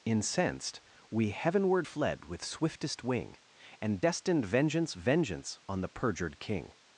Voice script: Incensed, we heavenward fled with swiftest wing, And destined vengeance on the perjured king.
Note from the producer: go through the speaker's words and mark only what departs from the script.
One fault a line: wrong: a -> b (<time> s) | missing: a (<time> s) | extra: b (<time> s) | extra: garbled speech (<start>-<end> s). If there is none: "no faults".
extra: vengeance (4.9 s)